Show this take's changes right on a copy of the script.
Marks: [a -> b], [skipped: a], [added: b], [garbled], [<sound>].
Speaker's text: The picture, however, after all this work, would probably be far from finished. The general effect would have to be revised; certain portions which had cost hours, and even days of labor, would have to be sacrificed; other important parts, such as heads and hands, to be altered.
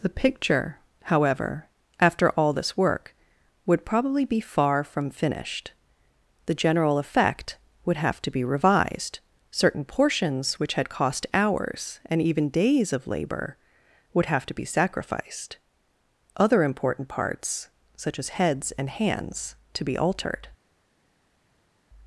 The picture, however, after all this work, would probably be far from finished. The general effect would have to be revised; certain portions which had cost hours, and even days of labor, would have to be sacrificed; other important parts, such as heads and hands, to be altered.